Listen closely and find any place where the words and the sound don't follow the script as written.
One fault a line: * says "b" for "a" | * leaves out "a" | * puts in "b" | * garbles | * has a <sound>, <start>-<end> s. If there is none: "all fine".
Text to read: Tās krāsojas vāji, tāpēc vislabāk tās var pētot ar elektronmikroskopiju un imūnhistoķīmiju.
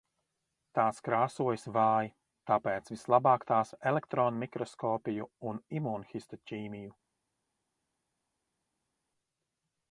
* leaves out "var pētot"